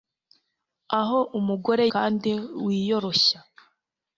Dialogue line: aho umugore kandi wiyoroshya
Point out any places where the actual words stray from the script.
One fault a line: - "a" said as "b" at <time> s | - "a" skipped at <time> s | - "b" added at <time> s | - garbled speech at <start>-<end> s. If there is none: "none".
none